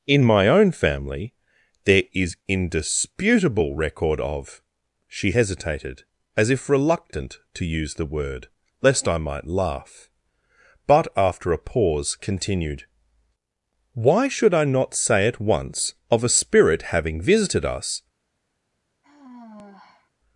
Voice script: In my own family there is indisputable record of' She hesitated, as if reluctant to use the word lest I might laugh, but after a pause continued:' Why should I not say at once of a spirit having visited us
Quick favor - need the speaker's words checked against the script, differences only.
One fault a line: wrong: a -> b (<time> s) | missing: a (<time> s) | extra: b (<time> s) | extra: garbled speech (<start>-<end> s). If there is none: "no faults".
no faults